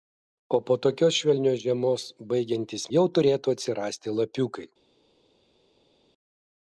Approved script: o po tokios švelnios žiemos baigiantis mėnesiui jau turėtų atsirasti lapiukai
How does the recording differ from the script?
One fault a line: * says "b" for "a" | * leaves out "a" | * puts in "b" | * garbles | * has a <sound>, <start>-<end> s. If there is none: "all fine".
* leaves out "mėnesiui"